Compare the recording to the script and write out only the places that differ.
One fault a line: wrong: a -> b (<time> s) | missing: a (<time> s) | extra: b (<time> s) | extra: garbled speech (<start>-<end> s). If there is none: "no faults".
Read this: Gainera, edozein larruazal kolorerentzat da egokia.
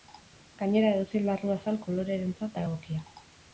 no faults